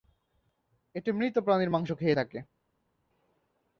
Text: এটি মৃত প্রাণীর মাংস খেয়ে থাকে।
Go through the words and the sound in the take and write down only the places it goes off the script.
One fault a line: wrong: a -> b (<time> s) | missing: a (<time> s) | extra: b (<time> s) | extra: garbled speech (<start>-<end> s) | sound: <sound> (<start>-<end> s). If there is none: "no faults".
no faults